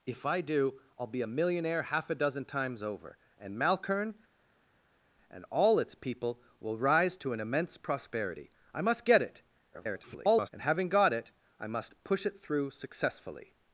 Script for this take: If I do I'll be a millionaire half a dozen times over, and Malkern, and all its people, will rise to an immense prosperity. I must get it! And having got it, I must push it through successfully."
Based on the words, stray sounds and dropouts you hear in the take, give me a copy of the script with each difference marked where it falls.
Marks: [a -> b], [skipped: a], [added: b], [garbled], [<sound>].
If I do I'll be a millionaire half a dozen times over, and Malkern, and all its people, will rise to an immense prosperity. I must get it! [garbled] And having got it, I must push it through successfully."